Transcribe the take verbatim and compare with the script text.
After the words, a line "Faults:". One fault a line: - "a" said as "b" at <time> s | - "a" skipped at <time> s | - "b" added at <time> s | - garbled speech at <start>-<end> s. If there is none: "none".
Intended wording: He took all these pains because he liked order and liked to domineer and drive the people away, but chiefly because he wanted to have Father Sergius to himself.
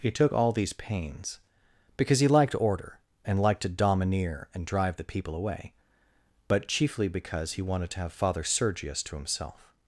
He took all these pains because he liked order and liked to domineer and drive the people away, but chiefly because he wanted to have Father Sergius to himself.
Faults:
none